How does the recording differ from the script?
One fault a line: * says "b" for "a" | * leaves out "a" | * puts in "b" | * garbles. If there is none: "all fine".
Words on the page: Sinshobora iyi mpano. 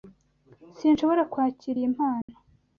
* puts in "kwakira"